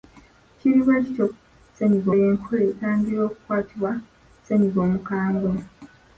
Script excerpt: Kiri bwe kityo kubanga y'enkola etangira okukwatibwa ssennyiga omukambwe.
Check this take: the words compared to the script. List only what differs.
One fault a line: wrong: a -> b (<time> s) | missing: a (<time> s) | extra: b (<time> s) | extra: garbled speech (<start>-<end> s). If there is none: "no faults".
wrong: kubanga -> ssennyiga (1.3 s)